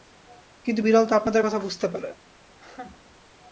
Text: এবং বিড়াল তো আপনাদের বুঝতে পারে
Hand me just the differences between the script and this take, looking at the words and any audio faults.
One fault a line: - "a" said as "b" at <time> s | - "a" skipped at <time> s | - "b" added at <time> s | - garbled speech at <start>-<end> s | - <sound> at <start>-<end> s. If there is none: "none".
- "এবং" said as "কিন্তু" at 0.7 s
- "কথা" added at 1.4 s
- laugh at 2.5-3.2 s